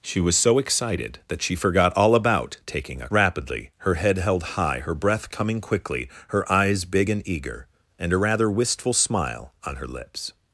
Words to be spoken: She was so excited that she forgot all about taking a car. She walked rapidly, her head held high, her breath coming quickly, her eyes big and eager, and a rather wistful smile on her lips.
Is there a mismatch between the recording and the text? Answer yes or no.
yes